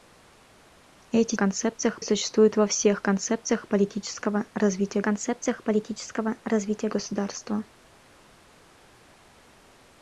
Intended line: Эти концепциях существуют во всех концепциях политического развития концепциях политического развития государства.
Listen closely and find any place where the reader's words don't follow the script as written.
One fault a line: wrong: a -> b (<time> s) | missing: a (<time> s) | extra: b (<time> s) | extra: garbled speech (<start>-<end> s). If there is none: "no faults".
no faults